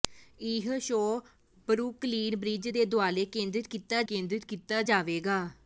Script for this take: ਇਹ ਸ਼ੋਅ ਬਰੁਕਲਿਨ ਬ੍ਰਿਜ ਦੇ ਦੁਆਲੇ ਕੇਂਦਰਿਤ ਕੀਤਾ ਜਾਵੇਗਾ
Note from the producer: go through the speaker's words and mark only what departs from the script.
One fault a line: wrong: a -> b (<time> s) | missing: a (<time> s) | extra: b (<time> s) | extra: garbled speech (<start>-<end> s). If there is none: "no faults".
extra: ਕੇਂਦਰਿਤ ਕੀਤਾ (4.0 s)